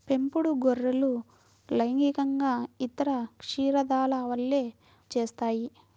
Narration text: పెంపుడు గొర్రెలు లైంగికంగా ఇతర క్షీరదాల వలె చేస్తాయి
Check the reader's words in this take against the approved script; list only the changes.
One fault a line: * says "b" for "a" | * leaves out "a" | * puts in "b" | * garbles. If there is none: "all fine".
all fine